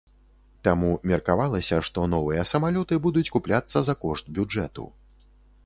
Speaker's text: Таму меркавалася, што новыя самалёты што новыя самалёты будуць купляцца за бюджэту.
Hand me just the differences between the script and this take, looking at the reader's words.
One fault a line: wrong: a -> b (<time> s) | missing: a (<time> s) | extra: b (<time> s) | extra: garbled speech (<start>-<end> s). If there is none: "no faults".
missing: што новыя самалёты (3.0 s)
extra: кошт (4.1 s)